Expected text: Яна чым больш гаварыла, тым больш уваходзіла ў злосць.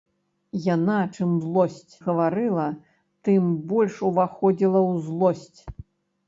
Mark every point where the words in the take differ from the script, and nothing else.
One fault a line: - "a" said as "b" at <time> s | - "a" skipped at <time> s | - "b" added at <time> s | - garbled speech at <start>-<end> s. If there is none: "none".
- "больш" said as "злосць" at 1.5 s